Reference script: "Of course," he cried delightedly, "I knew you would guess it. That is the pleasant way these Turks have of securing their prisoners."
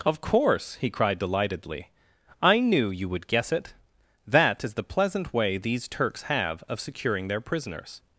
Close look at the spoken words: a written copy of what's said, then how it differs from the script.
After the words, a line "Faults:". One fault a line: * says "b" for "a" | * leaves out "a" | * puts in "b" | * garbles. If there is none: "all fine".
"Of course," he cried delightedly, "I knew you would guess it. That is the pleasant way these Turks have of securing their prisoners."
Faults:
all fine